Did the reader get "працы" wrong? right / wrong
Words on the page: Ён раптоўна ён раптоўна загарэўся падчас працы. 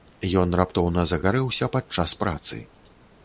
right